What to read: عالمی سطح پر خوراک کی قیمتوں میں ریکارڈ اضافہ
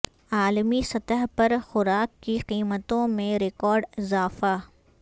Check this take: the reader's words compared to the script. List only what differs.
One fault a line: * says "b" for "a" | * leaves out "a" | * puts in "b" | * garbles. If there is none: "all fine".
all fine